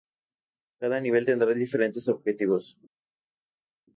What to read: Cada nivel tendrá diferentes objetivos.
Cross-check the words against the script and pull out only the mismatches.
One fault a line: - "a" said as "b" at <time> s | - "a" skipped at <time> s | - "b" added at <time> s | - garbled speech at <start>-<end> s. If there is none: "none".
none